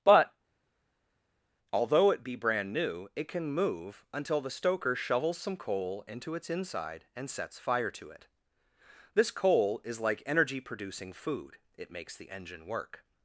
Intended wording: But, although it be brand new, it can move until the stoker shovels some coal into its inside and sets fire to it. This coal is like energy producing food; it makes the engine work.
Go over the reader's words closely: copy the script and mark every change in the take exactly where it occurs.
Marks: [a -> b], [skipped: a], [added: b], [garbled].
But, although it be brand new, it can move until the stoker shovels some coal into its inside and sets fire to it. This coal is like energy producing food; it makes the engine work.